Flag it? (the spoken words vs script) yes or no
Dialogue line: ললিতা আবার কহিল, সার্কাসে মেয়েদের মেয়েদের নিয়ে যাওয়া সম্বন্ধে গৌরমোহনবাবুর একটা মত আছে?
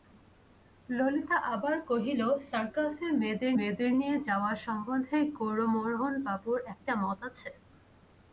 no